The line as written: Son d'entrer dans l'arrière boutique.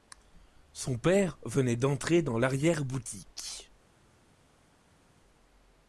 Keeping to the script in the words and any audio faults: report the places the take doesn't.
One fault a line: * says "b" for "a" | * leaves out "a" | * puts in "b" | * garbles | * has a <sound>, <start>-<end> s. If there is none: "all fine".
* puts in "père venait"